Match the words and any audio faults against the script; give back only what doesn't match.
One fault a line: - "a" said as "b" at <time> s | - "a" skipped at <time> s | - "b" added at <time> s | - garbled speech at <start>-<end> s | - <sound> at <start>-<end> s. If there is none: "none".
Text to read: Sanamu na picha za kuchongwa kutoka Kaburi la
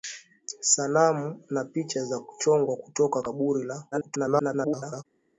- garbled speech at 3.9-5.0 s